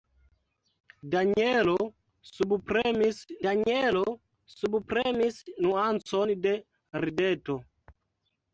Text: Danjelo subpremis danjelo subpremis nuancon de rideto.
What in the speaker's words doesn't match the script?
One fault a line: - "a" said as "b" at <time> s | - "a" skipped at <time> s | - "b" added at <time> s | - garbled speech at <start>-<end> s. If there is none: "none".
none